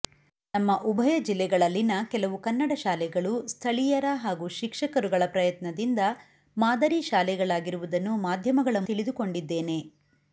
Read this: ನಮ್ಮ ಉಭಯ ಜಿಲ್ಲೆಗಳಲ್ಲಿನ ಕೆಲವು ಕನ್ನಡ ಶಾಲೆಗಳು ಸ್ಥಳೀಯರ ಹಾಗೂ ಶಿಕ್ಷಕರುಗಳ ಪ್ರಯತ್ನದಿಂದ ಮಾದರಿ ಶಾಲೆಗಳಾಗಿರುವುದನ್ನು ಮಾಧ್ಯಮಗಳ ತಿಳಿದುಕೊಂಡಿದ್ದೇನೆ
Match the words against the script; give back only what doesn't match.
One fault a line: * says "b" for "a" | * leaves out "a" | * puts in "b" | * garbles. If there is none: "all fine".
all fine